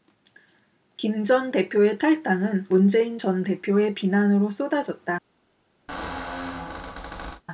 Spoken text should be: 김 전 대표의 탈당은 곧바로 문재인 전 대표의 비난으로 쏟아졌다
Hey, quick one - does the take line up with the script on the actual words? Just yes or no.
no